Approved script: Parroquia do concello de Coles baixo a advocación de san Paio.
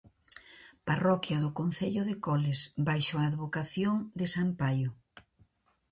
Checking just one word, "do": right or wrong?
right